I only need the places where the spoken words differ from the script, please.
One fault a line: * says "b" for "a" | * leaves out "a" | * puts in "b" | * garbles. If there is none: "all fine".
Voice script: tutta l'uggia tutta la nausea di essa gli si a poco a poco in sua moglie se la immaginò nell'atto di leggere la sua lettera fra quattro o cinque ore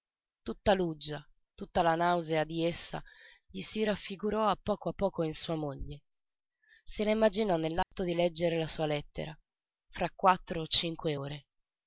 * puts in "raffigurò"